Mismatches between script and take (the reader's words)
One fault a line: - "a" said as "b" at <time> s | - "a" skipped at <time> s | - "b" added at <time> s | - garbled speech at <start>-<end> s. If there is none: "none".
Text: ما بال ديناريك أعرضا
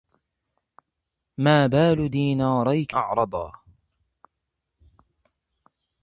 none